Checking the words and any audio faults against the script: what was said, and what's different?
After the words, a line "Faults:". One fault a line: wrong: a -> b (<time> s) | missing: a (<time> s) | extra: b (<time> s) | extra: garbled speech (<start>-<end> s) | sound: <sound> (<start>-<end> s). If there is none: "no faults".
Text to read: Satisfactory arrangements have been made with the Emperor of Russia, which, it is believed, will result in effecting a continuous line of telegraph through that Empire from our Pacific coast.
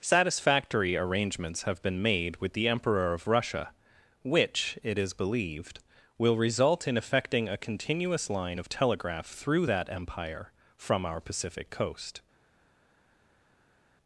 Satisfactory arrangements have been made with the Emperor of Russia, which, it is believed, will result in effecting a continuous line of telegraph through that Empire from our Pacific coast.
Faults:
no faults